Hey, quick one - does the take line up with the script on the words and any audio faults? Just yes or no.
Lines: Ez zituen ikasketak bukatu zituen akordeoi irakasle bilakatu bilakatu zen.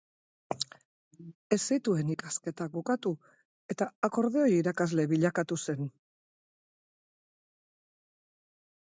no